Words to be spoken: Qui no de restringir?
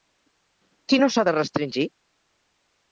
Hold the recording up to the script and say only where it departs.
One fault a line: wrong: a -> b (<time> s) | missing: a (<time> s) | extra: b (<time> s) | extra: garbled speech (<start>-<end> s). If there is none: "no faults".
extra: s'ha (1.2 s)